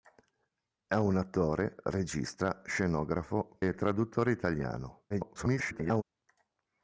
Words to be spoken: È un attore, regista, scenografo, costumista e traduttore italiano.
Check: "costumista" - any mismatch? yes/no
yes